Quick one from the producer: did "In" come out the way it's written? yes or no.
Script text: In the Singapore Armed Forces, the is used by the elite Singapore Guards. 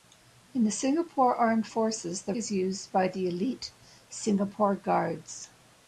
yes